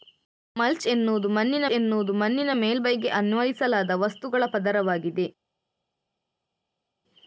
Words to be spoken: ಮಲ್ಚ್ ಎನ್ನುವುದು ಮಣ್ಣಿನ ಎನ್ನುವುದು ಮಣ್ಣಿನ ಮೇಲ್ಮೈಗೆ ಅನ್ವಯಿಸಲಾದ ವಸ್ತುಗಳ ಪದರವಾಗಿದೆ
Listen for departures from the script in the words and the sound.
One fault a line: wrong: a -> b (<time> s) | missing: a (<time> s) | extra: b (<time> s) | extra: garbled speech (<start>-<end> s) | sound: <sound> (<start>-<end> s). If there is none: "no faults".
no faults